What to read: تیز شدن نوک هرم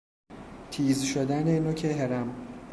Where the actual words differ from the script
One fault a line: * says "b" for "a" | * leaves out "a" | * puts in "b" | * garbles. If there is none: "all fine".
all fine